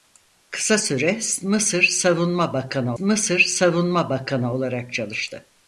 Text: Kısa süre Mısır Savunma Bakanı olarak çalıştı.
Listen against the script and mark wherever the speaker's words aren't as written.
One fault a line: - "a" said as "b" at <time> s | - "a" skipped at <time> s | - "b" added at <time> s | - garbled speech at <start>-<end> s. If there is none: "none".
- "Mısır Savunma Bakanı" added at 3.0 s